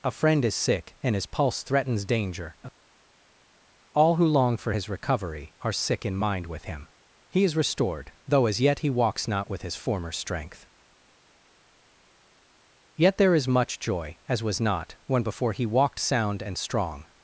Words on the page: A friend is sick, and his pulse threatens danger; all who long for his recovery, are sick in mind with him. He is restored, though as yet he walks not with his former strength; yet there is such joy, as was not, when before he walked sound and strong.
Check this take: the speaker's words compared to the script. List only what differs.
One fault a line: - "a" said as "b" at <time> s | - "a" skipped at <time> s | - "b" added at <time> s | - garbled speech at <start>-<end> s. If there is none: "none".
- "such" said as "much" at 13.6 s